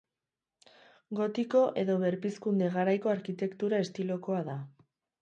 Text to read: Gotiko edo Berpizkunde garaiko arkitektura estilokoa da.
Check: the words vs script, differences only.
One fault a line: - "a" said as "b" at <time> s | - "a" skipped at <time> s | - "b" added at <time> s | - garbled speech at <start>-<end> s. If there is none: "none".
none